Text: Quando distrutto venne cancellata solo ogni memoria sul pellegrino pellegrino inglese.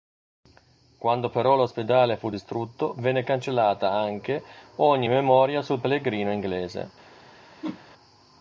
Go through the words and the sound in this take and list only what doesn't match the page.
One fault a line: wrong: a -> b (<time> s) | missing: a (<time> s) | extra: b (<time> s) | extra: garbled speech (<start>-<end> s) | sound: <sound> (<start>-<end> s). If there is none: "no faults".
extra: però l'ospedale fu (1.3 s)
wrong: solo -> anche (3.9 s)
missing: pellegrino (6.3 s)
sound: whoosh (7.6-7.8 s)